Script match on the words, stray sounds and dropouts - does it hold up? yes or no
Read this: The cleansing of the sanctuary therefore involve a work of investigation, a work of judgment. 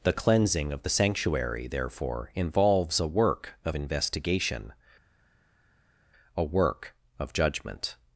no